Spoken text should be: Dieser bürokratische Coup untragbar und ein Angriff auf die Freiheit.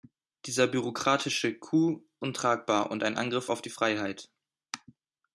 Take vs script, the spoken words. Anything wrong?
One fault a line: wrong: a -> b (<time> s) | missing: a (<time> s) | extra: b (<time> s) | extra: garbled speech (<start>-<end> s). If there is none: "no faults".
no faults